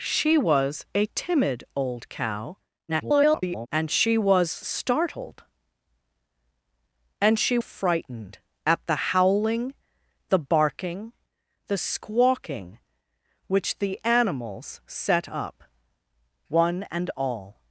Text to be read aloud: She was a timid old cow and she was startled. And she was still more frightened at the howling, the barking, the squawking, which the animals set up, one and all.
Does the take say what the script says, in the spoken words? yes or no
no